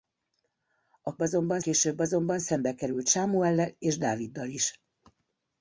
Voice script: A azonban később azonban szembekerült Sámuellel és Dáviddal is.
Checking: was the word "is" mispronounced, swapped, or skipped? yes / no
no